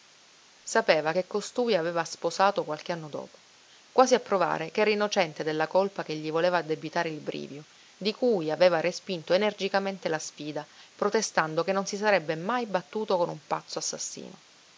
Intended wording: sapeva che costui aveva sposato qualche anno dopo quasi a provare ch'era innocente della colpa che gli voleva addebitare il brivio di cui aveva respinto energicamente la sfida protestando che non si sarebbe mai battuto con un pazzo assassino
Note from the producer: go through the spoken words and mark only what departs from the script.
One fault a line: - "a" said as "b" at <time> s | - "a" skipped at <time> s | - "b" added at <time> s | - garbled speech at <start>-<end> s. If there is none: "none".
none